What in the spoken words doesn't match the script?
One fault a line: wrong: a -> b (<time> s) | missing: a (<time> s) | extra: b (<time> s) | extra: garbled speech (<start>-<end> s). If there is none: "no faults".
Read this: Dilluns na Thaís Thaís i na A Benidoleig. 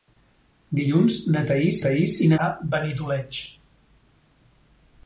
no faults